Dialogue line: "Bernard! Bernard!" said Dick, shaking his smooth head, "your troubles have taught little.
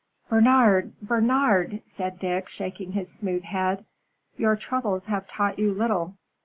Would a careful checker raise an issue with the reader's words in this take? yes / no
yes